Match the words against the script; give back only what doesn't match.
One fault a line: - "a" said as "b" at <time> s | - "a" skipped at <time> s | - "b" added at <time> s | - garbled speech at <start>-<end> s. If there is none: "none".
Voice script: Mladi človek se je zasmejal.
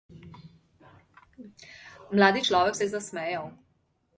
none